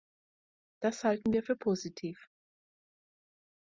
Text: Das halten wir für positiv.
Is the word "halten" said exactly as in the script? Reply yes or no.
yes